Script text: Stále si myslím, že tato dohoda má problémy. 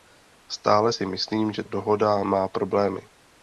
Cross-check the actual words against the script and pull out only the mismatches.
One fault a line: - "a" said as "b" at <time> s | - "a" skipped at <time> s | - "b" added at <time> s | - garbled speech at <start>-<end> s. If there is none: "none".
- "tato" skipped at 1.6 s